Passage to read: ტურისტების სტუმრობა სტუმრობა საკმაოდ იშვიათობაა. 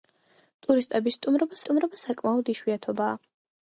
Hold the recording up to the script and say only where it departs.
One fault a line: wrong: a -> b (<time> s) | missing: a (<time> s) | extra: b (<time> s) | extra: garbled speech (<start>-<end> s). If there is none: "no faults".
no faults